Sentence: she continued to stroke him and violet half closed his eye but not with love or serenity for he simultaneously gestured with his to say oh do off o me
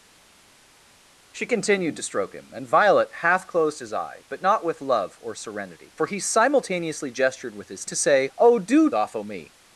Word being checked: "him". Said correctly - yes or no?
yes